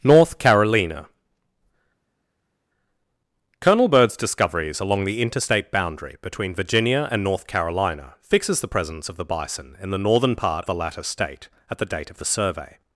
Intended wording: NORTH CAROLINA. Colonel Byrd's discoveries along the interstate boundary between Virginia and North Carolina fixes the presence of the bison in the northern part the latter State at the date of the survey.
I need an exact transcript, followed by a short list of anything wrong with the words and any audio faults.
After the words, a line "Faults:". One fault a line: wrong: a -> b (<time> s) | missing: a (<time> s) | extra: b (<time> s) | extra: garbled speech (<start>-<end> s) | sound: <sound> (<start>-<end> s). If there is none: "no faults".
NORTH CAROLINA. Colonel Byrd's discoveries along the interstate boundary between Virginia and North Carolina fixes the presence of the bison in the northern part the latter State at the date of the survey.
Faults:
no faults